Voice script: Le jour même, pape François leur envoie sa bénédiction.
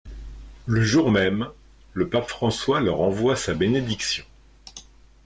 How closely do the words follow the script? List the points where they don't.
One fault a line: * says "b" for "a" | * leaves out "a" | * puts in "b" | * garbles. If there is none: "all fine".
* puts in "le"